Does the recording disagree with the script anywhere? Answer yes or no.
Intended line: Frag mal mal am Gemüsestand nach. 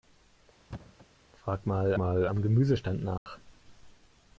no